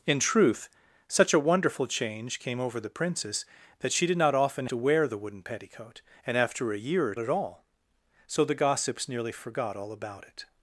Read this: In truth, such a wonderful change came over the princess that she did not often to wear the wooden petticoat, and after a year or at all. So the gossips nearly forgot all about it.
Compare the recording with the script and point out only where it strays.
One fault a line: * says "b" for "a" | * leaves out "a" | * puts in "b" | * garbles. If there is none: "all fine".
all fine